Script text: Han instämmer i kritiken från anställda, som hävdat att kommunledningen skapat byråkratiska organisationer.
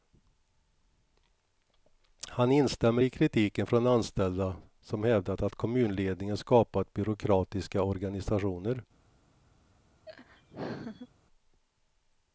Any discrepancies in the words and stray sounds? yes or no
yes